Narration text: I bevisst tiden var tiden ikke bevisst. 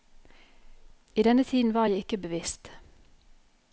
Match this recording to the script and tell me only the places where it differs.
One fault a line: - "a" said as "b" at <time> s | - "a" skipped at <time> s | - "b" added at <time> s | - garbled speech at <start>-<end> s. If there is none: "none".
- "bevisst" said as "denne" at 1.2 s
- "tiden" said as "jeg" at 1.8 s